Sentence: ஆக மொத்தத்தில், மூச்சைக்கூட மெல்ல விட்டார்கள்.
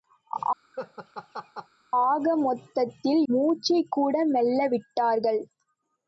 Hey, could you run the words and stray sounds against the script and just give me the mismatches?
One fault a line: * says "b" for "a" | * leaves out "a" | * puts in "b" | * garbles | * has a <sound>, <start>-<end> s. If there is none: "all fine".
* has a laugh, 0.7-1.7 s